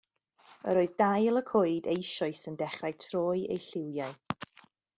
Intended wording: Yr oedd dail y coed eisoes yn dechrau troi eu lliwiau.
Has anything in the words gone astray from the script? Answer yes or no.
no